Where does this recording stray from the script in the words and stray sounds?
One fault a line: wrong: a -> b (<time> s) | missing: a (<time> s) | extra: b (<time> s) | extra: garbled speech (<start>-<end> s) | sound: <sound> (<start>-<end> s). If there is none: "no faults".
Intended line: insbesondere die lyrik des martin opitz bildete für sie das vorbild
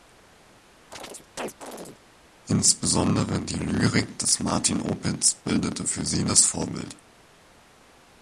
sound: chirp (0.9-2.0 s)